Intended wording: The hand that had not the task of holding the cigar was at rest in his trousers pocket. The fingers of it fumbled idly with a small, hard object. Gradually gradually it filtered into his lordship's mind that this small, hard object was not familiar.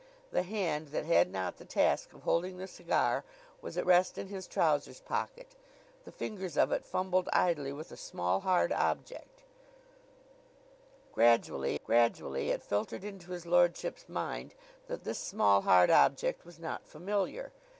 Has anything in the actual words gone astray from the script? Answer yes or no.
no